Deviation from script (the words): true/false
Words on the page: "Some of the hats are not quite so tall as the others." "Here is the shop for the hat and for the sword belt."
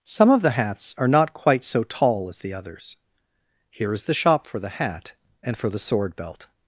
false